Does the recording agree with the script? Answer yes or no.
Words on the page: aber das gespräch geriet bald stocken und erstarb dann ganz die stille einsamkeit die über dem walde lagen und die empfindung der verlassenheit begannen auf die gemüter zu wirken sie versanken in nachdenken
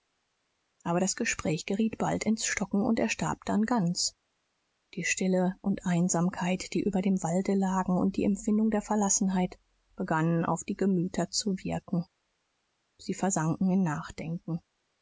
no